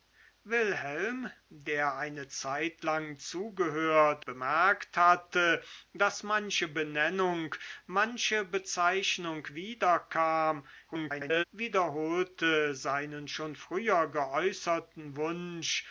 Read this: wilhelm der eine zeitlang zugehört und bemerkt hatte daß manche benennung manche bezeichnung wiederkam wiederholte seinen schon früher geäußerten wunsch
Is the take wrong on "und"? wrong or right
wrong